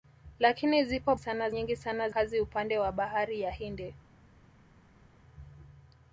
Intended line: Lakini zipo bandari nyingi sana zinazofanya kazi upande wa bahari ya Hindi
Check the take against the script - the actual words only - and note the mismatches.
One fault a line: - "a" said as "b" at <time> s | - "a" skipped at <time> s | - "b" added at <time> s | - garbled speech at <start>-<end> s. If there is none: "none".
- "bandari" said as "sana" at 1.2 s
- "zinazofanya" skipped at 2.1 s